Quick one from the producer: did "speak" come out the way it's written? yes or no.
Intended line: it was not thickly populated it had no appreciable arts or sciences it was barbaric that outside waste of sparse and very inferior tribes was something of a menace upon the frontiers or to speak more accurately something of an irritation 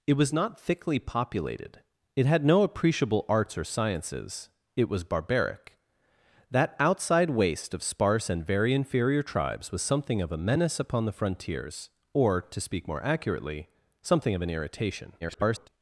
yes